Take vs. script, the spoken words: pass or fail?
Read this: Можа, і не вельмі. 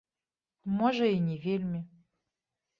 pass